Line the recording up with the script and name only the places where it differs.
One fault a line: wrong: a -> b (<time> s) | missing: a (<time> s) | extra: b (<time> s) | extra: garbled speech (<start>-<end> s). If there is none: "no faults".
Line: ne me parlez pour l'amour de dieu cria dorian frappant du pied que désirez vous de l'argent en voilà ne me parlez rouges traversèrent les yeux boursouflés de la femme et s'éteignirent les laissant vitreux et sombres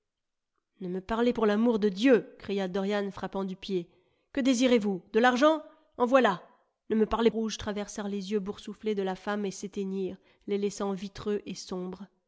no faults